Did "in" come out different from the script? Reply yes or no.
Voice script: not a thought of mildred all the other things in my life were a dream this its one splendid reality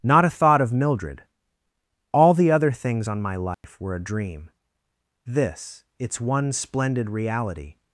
yes